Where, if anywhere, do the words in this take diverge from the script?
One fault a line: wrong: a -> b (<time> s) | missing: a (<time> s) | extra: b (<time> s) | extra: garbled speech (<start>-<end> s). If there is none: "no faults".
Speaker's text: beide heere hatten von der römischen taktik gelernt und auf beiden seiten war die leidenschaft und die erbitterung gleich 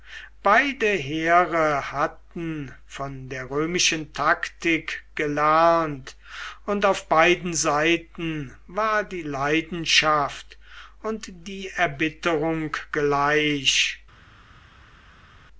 no faults